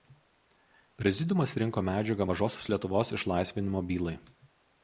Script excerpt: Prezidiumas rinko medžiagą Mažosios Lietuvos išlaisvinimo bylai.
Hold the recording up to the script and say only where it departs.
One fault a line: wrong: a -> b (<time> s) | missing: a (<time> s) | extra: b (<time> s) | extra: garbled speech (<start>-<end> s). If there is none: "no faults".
no faults